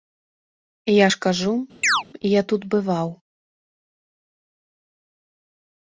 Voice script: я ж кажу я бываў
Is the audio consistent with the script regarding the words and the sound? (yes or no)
no